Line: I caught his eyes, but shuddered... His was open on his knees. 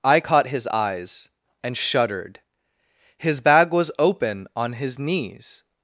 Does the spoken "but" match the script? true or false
false